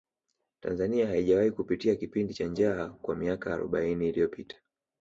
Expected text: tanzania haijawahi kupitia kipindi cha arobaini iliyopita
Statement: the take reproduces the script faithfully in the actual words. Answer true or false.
false